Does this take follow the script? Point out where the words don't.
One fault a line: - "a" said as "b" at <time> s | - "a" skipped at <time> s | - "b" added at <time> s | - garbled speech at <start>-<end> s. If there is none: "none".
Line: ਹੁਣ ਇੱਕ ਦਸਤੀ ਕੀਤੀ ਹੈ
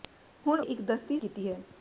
none